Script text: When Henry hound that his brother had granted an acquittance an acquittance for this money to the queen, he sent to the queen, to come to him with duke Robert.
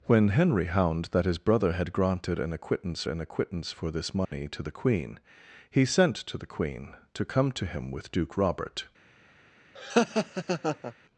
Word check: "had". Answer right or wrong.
right